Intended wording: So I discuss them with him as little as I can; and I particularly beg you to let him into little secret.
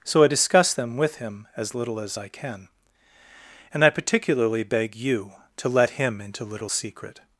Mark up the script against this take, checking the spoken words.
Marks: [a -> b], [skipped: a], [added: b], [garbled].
So I discuss them with him as little as I can; and I particularly beg you to let him into little secret.